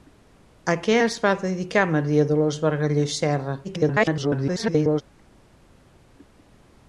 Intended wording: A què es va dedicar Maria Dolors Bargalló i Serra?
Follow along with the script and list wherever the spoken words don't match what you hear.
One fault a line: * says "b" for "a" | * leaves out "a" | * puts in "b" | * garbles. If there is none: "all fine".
* garbles